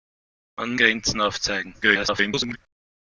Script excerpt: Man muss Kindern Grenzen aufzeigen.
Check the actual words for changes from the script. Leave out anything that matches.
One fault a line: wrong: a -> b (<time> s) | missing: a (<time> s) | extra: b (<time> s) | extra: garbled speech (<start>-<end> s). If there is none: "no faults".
missing: muss Kindern (0.8 s)
extra: garbled speech (1.8-2.6 s)